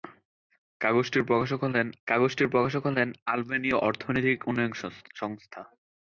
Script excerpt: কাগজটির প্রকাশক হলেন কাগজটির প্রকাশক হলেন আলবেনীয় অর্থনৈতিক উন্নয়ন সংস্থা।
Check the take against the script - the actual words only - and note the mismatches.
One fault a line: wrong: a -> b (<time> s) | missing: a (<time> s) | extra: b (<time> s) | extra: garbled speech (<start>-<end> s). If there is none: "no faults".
no faults